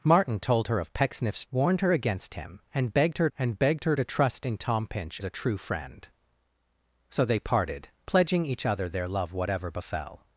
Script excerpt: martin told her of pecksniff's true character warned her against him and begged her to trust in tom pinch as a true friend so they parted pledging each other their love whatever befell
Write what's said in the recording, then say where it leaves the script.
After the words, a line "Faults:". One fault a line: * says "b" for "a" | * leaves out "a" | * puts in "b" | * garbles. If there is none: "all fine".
martin told her of pecksniff's warned her against him and begged her and begged her to trust in tom pinch a true friend so they parted pledging each other their love whatever befell
Faults:
* leaves out "true character"
* puts in "and begged her"
* leaves out "as"